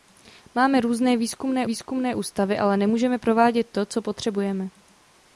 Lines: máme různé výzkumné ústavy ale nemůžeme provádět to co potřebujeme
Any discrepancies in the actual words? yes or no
yes